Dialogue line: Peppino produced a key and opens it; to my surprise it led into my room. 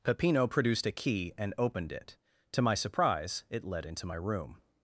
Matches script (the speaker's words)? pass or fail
fail